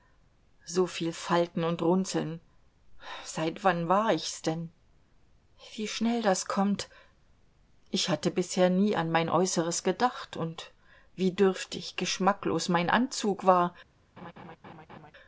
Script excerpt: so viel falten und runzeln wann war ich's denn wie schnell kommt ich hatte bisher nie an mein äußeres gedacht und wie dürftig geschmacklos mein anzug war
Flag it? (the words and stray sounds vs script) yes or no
yes